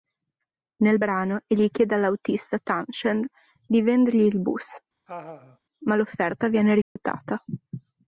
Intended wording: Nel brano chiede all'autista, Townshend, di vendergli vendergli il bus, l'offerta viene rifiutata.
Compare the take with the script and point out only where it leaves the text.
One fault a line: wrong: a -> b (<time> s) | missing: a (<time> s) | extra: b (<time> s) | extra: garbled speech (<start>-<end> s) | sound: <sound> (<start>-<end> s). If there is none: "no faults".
extra: egli (1.5 s)
missing: vendergli (4.3 s)
sound: laugh (5.1-5.6 s)
extra: ma (5.8 s)
sound: dropout (6.8-7.0 s)